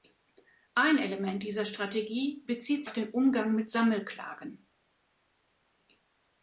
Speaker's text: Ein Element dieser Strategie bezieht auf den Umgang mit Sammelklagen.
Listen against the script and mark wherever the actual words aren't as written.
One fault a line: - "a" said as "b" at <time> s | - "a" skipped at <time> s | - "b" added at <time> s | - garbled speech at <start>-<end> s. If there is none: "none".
none